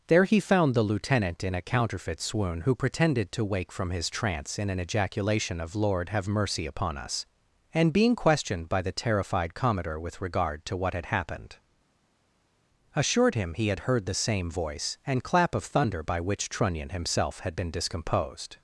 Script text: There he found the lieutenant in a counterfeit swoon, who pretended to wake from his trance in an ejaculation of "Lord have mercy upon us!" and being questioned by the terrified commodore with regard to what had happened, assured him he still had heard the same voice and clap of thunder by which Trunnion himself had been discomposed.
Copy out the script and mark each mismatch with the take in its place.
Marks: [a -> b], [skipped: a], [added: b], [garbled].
There he found the lieutenant in a counterfeit swoon, who pretended to wake from his trance in an ejaculation of "Lord have mercy upon us!" and being questioned by the terrified commodore with regard to what had happened, assured him he [skipped: still] had heard the same voice and clap of thunder by which Trunnion himself had been discomposed.